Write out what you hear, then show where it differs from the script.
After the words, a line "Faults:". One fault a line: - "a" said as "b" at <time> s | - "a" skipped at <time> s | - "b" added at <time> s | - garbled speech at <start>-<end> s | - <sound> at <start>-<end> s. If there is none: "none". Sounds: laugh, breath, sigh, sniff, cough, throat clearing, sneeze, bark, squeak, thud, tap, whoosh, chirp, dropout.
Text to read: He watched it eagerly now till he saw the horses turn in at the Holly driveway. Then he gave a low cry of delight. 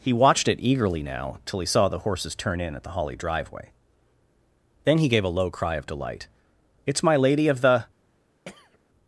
He watched it eagerly now till he saw the horses turn in at the Holly driveway. Then he gave a low cry of delight. "It's my Lady of the
Faults:
- "It's my Lady of the" added at 6.9 s
- throat clearing at 8.5-8.8 s